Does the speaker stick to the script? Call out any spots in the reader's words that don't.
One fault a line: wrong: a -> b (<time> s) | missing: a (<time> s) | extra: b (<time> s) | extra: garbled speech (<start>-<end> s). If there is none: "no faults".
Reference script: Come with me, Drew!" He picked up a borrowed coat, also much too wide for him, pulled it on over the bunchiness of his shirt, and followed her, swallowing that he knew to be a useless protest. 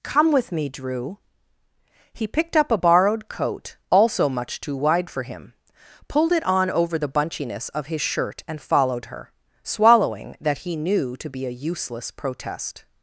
no faults